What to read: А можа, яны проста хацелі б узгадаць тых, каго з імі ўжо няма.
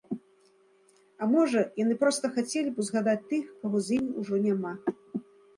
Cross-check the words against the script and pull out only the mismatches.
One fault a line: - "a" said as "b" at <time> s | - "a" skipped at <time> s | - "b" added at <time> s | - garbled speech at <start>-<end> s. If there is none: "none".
none